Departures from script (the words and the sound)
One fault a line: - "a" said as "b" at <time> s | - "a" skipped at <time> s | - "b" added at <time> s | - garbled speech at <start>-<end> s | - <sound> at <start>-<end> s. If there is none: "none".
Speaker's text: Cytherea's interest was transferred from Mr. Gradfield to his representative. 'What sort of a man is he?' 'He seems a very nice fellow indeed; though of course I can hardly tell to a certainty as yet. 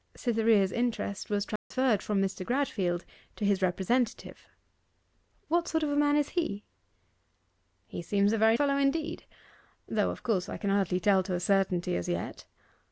- dropout at 1.6-1.7 s
- "nice" skipped at 8.6 s